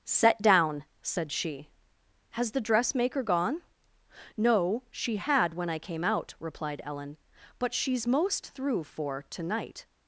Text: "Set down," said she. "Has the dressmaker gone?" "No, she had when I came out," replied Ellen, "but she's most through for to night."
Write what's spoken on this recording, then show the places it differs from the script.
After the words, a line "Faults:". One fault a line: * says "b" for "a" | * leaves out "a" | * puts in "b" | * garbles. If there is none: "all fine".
"Set down," said she. "Has the dressmaker gone?" "No, she had when I came out," replied Ellen, "but she's most through for to night."
Faults:
all fine